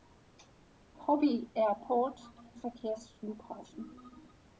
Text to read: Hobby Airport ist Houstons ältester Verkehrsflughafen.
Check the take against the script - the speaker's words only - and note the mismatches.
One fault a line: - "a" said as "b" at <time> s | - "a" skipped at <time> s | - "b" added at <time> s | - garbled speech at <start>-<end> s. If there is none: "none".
- "ist Houstons ältester" skipped at 2.2 s